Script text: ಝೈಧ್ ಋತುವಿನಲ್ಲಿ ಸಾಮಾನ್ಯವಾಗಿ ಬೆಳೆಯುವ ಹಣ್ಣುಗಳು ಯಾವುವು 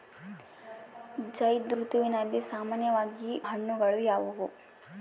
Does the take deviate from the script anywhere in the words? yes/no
yes